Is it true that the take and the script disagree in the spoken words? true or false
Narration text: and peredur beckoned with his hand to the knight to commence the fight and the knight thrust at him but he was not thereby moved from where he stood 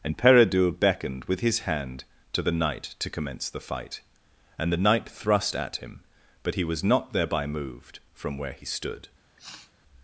false